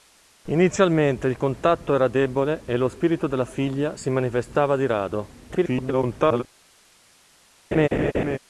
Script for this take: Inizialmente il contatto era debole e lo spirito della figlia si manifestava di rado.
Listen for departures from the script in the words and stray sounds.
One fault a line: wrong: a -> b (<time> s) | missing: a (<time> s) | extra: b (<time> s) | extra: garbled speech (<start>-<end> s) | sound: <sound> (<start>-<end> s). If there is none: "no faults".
extra: garbled speech (5.5-6.4 s)
sound: laugh (7.7-8.4 s)